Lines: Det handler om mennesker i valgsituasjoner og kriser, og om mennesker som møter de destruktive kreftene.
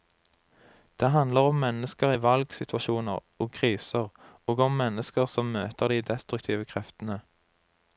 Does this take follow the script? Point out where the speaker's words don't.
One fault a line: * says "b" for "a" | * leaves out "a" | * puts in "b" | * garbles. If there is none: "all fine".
all fine